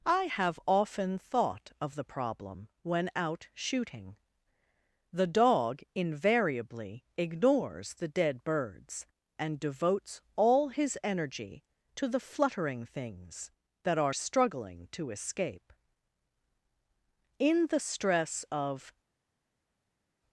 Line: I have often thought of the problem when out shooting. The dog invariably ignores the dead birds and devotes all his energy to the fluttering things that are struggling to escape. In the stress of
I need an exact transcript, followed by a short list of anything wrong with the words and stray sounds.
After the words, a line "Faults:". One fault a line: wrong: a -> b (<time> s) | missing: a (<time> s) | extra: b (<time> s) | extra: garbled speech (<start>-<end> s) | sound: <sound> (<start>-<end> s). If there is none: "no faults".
I have often thought of the problem when out shooting. The dog invariably ignores the dead birds and devotes all his energy to the fluttering things that are struggling to escape. In the stress of
Faults:
no faults